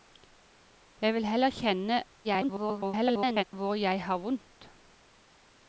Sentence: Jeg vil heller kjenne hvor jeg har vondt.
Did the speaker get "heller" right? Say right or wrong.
right